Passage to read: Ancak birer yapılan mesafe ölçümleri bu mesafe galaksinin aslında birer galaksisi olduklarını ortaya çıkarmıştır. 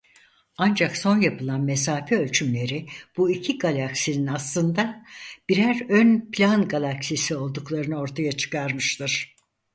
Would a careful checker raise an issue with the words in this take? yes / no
yes